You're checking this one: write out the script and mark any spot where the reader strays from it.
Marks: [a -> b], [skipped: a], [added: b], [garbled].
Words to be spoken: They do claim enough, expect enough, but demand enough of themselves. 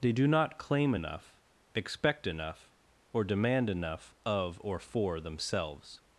They do [added: not] claim enough, expect enough, [but -> or] demand enough of [added: or for] themselves.